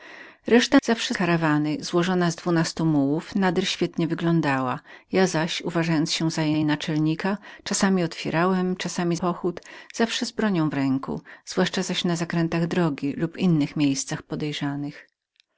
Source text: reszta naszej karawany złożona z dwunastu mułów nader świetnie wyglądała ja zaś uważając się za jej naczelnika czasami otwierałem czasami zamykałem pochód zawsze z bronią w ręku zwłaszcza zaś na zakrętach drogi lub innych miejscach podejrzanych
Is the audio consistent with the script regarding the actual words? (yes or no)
no